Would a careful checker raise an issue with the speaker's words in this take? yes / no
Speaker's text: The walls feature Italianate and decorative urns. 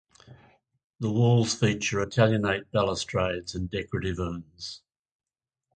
yes